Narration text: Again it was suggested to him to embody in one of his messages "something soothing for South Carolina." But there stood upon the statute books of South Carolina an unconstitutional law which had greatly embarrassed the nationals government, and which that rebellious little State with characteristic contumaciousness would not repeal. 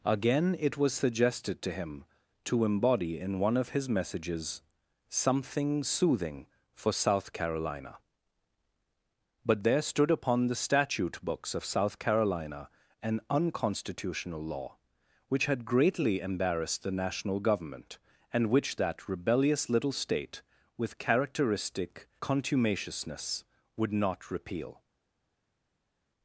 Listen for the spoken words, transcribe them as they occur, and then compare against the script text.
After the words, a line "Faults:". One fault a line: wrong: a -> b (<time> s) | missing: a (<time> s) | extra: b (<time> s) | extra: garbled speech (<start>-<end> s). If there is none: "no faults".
Again it was suggested to him to embody in one of his messages "something soothing for South Carolina." But there stood upon the statute books of South Carolina an unconstitutional law which had greatly embarrassed the national government, and which that rebellious little State with characteristic contumaciousness would not repeal.
Faults:
wrong: nationals -> national (16.9 s)